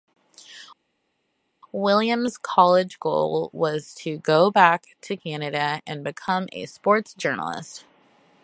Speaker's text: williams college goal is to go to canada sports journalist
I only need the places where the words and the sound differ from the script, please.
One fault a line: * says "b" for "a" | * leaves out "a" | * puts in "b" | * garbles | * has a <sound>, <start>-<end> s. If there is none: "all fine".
* says "was" for "is"
* puts in "back"
* puts in "and become a"